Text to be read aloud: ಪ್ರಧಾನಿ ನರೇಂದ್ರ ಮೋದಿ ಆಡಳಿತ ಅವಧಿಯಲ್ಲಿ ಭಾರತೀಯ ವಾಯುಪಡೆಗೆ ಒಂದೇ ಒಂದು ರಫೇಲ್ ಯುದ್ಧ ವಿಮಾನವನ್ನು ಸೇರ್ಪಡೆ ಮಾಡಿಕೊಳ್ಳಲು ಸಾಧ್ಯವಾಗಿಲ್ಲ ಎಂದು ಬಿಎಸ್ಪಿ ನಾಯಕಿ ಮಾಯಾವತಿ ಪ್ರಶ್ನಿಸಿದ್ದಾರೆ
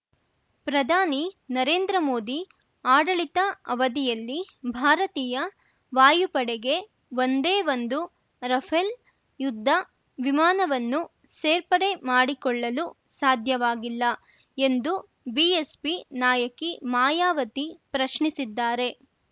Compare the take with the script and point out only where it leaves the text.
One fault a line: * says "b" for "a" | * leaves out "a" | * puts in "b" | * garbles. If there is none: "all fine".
all fine